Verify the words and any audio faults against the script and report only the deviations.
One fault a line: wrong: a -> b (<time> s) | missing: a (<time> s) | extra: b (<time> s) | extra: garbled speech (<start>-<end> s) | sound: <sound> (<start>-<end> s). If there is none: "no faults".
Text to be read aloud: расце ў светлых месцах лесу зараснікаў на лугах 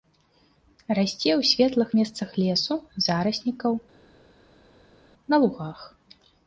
no faults